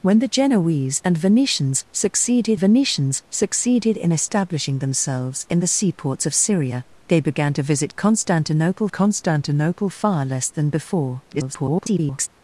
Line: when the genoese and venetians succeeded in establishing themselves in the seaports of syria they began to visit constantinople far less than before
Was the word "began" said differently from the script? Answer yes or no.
no